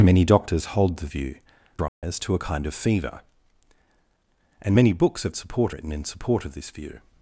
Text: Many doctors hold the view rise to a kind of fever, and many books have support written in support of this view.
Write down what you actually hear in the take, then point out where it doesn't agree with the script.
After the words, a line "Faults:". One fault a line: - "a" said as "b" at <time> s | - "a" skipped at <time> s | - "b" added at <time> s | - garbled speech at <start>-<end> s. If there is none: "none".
Many doctors hold the view rise to a kind of fever, and many books have support written in support of this view.
Faults:
none